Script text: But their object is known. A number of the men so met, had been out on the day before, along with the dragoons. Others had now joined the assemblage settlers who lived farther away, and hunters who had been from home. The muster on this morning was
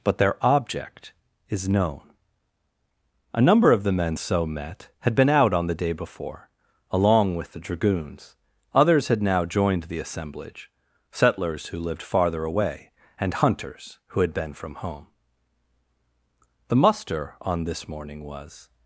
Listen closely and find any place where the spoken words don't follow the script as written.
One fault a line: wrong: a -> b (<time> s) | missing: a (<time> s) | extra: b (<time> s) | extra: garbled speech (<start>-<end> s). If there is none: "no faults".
no faults